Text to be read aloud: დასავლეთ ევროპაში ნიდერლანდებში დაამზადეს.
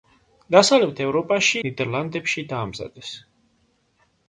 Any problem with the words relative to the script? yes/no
no